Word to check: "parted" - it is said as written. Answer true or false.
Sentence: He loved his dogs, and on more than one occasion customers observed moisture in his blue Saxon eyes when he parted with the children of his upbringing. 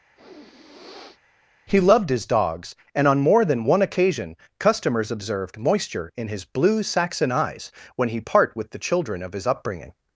false